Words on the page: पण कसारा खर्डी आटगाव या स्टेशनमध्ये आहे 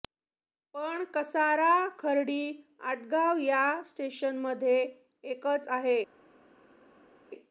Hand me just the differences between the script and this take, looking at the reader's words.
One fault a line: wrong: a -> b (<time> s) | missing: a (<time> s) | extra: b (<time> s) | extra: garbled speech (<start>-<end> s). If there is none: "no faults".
extra: एकच (5.3 s)